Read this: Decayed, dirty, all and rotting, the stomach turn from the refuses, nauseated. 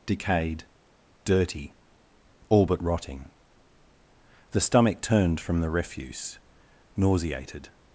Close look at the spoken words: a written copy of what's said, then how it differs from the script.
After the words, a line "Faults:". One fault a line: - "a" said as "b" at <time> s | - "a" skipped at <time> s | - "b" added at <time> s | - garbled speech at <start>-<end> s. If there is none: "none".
Decayed, dirty, all but rotting, the stomach turned from the refuse, nauseated.
Faults:
- "and" said as "but" at 2.6 s
- "turn" said as "turned" at 5.0 s
- "refuses" said as "refuse" at 5.7 s